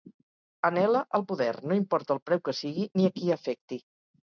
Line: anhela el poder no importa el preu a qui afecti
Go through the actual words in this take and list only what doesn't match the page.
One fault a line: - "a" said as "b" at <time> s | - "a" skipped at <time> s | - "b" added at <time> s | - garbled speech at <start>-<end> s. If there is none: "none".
- "que sigui ni" added at 2.5 s